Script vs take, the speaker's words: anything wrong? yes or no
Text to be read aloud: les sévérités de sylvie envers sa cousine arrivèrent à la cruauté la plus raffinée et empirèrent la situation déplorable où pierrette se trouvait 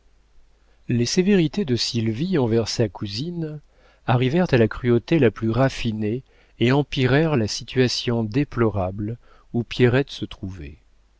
no